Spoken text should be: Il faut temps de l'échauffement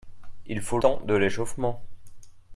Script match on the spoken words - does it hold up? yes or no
yes